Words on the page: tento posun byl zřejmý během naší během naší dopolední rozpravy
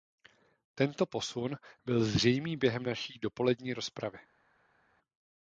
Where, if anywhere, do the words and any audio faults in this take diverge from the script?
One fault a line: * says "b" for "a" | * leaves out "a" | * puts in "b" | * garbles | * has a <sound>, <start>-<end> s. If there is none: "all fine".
* leaves out "během naší"